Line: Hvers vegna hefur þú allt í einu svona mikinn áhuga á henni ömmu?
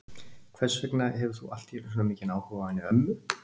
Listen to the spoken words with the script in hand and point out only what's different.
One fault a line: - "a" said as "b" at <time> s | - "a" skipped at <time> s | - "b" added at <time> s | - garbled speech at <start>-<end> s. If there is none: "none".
none